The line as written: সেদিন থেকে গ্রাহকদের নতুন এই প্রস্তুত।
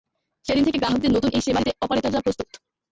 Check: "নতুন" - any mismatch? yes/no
no